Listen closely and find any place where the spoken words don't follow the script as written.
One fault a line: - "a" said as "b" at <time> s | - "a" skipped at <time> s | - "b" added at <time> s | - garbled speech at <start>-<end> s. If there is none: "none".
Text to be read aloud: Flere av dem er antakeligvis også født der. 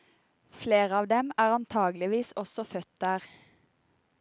none